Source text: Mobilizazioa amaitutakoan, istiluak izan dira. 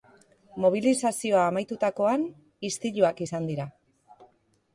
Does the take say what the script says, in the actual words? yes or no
yes